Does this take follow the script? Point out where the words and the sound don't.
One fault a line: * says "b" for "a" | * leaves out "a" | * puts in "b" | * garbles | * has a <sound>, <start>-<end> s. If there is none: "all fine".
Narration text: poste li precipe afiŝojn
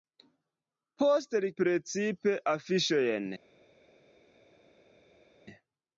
all fine